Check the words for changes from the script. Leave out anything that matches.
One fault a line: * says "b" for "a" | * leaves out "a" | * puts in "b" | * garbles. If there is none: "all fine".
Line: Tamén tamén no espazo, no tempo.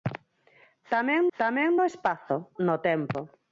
all fine